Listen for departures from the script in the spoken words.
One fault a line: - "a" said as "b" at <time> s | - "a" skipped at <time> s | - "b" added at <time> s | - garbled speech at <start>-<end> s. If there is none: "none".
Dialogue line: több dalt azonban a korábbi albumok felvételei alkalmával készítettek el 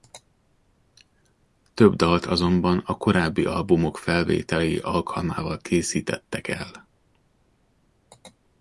none